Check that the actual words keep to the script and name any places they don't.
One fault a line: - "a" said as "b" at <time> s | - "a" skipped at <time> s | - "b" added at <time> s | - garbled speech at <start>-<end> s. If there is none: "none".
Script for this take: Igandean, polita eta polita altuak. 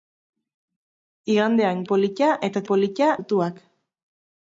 none